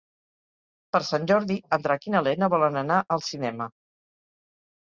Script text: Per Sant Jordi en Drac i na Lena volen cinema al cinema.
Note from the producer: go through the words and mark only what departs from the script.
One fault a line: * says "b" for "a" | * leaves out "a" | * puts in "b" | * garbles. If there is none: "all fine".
* says "anar" for "cinema"